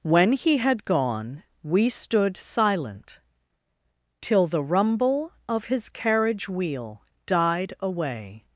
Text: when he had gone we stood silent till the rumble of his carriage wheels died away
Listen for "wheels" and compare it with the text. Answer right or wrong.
wrong